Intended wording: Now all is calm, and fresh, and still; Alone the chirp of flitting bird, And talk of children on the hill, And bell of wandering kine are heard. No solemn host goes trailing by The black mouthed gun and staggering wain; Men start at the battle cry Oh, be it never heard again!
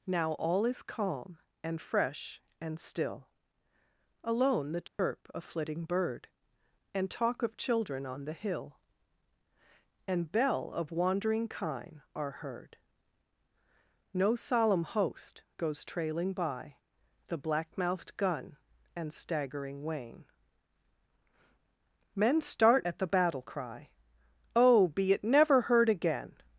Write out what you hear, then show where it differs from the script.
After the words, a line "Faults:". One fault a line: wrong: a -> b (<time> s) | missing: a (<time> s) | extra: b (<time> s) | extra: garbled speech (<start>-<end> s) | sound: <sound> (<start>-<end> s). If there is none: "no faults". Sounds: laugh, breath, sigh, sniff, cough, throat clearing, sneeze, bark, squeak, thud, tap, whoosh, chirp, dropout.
Now all is calm, and fresh, and still; Alone the chirp of flitting bird, And talk of children on the hill, And bell of wandering kine are heard. No solemn host goes trailing by The black mouthed gun and staggering wain; Men start at the battle cry Oh, be it never heard again!
Faults:
sound: dropout (4.9-5.0 s)